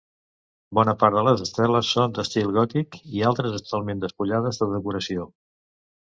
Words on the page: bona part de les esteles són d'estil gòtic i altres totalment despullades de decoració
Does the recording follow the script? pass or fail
pass